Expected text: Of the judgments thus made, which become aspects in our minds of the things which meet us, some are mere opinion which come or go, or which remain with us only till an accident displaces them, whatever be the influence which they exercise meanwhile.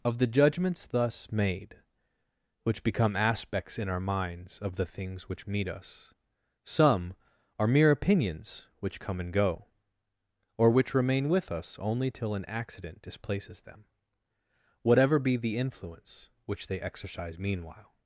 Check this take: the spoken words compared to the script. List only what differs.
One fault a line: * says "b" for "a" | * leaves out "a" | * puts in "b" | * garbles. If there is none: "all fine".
* says "opinions" for "opinion"
* says "and" for "or"